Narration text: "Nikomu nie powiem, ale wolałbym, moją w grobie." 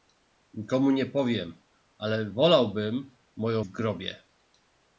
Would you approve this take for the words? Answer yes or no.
yes